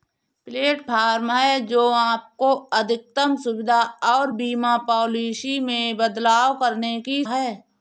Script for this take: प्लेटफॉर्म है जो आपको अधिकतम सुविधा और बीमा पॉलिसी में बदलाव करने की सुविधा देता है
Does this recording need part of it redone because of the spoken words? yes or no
yes